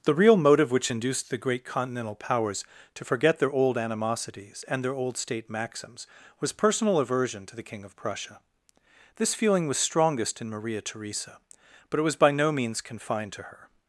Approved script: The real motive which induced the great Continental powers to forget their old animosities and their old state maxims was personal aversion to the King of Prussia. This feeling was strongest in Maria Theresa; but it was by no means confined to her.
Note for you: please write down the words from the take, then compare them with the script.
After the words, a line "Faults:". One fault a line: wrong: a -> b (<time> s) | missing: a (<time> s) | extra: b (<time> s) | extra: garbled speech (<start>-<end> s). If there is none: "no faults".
The real motive which induced the great Continental powers to forget their old animosities and their old state maxims was personal aversion to the King of Prussia. This feeling was strongest in Maria Theresa; but it was by no means confined to her.
Faults:
no faults